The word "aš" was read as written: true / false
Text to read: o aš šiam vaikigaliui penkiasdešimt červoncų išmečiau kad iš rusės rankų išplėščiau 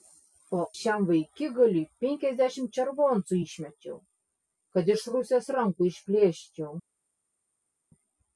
false